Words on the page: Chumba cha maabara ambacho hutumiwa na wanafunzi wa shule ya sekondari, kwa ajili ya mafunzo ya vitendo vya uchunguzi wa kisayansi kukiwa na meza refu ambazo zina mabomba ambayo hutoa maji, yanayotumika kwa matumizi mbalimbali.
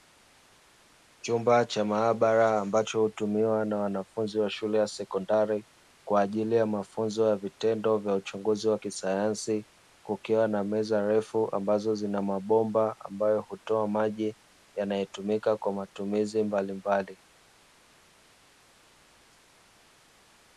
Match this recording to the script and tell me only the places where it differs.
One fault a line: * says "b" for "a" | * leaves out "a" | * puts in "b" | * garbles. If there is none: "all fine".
all fine